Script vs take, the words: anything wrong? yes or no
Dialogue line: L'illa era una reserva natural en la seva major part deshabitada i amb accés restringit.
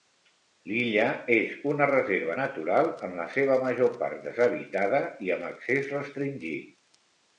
yes